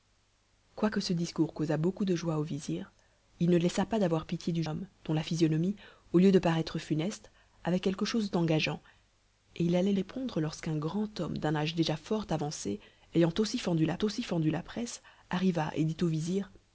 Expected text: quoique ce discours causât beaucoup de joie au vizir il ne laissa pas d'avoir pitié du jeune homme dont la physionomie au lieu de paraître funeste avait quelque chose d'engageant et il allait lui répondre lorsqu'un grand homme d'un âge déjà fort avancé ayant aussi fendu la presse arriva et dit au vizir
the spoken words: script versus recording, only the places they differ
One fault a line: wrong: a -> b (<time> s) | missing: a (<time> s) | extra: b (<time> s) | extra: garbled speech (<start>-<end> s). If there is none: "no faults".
missing: jeune (4.6 s)
missing: lui (9.9 s)
extra: aussi fendu la (14.0 s)